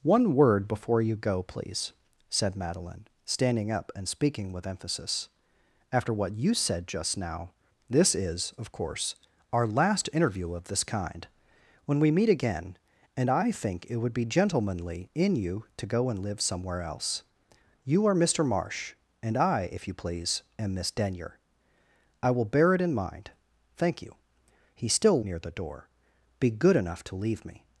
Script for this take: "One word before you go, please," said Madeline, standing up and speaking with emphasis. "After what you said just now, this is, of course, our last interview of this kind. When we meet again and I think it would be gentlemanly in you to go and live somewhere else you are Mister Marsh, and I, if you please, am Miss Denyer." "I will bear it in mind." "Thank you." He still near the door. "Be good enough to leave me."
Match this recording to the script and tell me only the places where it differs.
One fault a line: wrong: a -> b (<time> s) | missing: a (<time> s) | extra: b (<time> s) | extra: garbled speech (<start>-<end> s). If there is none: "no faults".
no faults